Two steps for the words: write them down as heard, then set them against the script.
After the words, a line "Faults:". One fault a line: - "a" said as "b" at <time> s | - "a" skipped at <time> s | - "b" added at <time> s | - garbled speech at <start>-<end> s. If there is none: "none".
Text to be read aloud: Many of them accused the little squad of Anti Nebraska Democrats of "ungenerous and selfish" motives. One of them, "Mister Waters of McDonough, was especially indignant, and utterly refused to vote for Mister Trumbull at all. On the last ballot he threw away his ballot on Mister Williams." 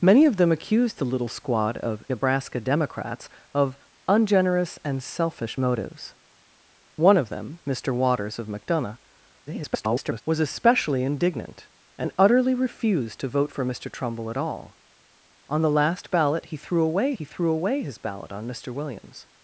Many of them accused the little squad of Nebraska Democrats of "ungenerous and selfish" motives. One of them, "Mister Waters of McDonough, [garbled] was especially indignant, and utterly refused to vote for Mister Trumbull at all. On the last ballot he threw away he threw away his ballot on Mister Williams."
Faults:
- "Anti" skipped at 2.0 s
- garbled speech at 9.5-10.2 s
- "he threw away" added at 17.1 s